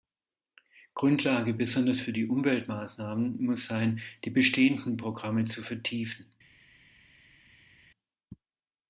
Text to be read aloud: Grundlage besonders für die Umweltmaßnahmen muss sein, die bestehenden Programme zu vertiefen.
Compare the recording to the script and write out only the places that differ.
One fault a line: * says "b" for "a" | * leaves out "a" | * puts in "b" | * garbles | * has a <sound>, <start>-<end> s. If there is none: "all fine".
all fine